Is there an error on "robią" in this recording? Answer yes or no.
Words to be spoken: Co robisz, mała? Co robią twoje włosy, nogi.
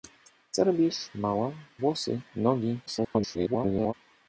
yes